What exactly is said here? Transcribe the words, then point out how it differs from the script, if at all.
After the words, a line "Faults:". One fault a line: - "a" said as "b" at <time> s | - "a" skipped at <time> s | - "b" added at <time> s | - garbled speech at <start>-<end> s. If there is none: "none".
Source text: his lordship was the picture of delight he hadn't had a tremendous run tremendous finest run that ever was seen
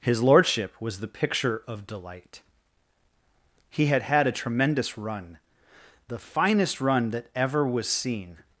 his lordship was the picture of delight he had had a tremendous run the finest run that ever was seen
Faults:
- "hadn't" said as "had" at 3.9 s
- "tremendous" said as "the" at 6.1 s